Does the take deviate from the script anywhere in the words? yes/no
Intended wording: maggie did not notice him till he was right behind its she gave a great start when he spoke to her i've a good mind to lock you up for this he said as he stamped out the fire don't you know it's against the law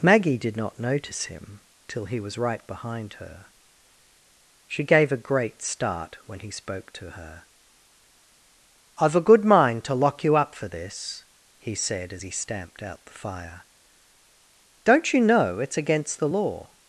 yes